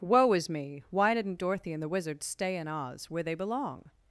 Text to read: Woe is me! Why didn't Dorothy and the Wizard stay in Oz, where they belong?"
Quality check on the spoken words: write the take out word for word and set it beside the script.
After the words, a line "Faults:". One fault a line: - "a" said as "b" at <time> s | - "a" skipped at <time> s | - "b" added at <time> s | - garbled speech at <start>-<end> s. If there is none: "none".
Woe is me! Why didn't Dorothy and the Wizard stay in Oz, where they belong?"
Faults:
none